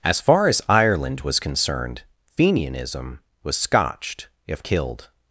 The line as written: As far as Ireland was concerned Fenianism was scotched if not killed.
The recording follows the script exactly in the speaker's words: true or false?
false